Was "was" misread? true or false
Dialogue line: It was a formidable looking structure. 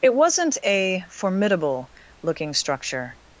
true